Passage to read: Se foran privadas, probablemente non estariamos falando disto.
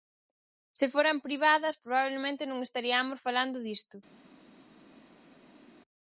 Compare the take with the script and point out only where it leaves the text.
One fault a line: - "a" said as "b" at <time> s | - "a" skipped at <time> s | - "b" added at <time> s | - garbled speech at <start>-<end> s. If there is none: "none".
none